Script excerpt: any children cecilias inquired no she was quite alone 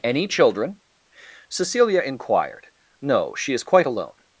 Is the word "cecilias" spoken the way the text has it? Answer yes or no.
no